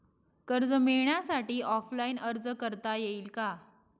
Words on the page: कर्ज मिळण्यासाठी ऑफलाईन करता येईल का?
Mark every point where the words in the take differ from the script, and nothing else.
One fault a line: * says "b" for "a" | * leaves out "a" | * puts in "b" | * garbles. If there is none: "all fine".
* puts in "अर्ज"